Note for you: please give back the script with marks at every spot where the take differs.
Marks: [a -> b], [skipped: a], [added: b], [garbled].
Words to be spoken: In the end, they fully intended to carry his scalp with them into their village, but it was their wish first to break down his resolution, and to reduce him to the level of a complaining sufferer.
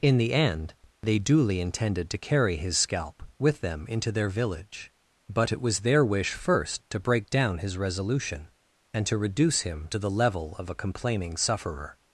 In the end, they [fully -> duly] intended to carry his scalp with them into their village, but it was their wish first to break down his resolution, and to reduce him to the level of a complaining sufferer.